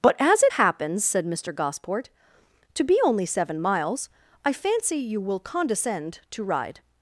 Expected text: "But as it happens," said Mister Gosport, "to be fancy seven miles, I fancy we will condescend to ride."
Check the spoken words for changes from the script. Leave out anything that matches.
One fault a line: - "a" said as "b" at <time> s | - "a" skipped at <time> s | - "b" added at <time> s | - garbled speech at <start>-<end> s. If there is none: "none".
- "fancy" said as "only" at 3.0 s
- "we" said as "you" at 5.0 s